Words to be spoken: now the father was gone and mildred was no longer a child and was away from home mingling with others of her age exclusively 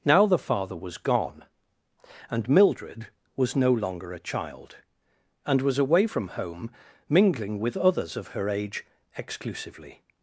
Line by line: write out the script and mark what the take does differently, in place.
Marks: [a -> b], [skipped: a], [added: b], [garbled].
now the father was gone and mildred was no longer a child and was away from home mingling with others of her age exclusively